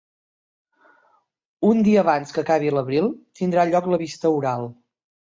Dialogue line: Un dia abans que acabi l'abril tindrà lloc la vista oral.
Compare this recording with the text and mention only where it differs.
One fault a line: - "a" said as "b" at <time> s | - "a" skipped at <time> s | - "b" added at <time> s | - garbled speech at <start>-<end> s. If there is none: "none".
none